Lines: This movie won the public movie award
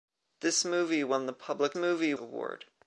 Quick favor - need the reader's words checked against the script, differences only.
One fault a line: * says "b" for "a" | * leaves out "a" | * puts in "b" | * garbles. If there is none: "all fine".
all fine